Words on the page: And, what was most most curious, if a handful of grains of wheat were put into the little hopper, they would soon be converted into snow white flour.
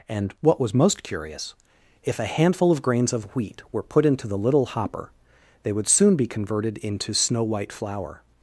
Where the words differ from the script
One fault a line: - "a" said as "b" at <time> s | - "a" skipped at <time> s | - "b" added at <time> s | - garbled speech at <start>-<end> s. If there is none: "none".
- "most" skipped at 1.0 s